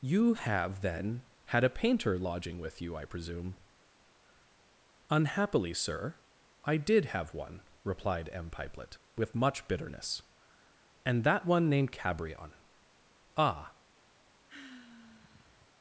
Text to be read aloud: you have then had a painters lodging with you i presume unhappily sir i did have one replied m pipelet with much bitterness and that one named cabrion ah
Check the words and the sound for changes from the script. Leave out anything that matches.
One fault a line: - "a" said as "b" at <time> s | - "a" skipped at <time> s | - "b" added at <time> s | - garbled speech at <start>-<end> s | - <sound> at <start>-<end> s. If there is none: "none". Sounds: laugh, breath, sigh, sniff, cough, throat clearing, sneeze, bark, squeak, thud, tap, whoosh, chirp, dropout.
- "painters" said as "painter" at 1.7 s
- sigh at 14.5-15.7 s